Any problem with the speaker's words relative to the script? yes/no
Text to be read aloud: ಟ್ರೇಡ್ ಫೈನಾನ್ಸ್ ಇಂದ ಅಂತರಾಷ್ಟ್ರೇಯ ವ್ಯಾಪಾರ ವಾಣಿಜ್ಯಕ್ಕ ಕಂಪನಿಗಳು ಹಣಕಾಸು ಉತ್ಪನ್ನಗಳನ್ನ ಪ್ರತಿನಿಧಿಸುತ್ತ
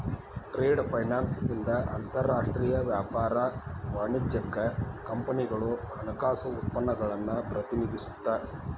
no